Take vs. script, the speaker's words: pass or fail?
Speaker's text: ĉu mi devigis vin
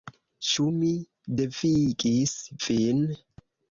pass